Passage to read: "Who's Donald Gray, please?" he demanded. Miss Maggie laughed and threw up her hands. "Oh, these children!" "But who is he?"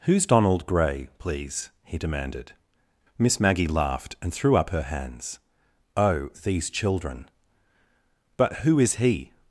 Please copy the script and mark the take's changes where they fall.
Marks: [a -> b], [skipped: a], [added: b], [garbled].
"Who's Donald Gray, please?" he demanded. Miss Maggie laughed and threw up her hands. "Oh, these children!" "But who is he?"